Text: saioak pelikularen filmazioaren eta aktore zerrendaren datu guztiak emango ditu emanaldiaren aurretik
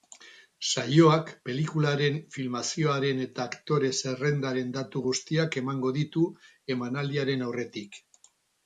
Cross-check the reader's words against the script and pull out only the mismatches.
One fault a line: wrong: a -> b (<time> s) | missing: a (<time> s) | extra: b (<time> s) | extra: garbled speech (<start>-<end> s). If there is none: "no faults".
no faults